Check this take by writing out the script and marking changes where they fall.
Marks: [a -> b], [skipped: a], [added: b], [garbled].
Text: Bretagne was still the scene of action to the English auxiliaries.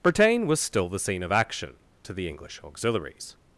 Bretagne was still the scene of action to the English auxiliaries.